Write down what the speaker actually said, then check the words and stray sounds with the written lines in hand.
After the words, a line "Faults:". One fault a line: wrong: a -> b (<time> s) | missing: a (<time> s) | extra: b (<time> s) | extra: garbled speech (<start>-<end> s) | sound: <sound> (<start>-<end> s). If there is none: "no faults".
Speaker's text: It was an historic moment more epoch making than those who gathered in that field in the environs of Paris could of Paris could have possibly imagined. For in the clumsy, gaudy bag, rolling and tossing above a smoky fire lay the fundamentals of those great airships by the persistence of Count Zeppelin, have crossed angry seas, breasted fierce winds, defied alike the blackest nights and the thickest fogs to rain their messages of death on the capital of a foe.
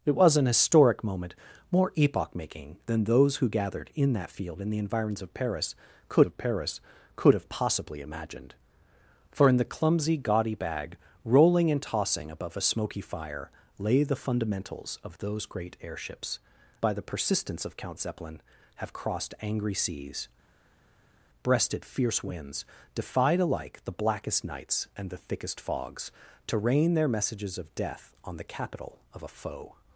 It was an historic moment more epoch making than those who gathered in that field in the environs of Paris could of Paris could have possibly imagined. For in the clumsy, gaudy bag, rolling and tossing above a smoky fire lay the fundamentals of those great airships by the persistence of Count Zeppelin, have crossed angry seas, breasted fierce winds, defied alike the blackest nights and the thickest fogs to rain their messages of death on the capital of a foe.
Faults:
no faults